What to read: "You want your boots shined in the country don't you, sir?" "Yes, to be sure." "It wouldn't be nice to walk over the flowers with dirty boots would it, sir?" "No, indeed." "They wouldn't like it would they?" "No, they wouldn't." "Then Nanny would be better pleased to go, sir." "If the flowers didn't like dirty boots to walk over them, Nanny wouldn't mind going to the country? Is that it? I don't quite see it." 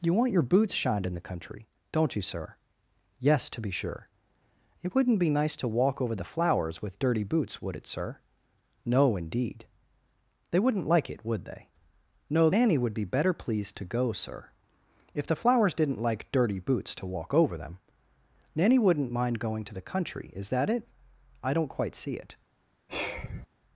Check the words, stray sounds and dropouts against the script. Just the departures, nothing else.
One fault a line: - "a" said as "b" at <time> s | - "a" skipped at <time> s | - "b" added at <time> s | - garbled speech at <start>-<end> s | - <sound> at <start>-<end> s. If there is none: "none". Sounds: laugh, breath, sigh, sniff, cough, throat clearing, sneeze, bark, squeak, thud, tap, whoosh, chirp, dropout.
- "they wouldn't Then" skipped at 12.5 s
- sigh at 22.9-23.5 s